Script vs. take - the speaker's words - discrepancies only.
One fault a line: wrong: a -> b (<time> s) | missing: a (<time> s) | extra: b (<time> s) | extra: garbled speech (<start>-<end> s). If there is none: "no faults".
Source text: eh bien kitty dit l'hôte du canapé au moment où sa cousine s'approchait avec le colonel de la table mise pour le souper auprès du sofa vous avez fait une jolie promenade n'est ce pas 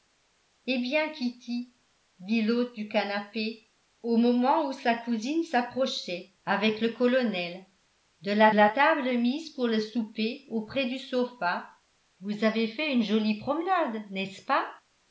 extra: la (8.5 s)